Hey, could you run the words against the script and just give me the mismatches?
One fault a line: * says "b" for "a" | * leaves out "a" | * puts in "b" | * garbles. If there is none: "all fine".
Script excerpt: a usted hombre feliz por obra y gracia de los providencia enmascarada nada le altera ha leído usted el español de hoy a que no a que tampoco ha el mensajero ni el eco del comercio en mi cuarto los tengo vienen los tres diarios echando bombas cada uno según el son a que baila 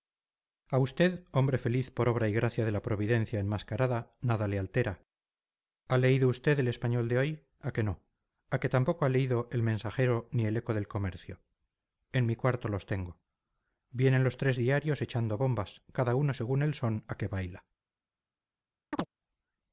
* says "la" for "los"
* puts in "leído"